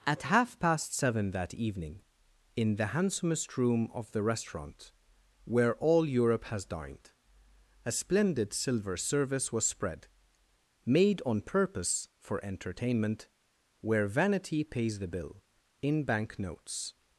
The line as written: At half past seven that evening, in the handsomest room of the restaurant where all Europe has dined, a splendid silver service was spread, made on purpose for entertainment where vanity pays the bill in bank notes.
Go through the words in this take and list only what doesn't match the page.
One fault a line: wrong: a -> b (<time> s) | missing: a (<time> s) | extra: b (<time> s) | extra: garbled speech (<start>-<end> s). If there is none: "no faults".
no faults